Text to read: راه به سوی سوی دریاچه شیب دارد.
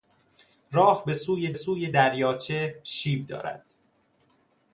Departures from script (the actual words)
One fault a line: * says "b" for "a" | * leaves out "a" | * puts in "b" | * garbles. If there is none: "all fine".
all fine